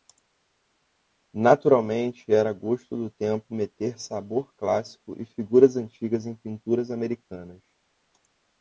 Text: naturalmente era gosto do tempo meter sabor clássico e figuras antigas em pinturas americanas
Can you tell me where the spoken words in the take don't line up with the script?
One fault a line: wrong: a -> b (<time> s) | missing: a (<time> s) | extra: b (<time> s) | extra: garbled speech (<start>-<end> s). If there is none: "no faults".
no faults